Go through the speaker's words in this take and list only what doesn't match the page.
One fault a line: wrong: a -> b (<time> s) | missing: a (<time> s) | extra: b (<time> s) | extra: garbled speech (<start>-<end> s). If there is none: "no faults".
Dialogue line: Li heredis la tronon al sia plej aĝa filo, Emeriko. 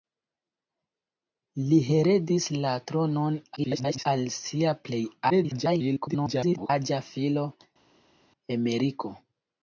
extra: garbled speech (3.6-4.1 s)
extra: garbled speech (5.3-6.7 s)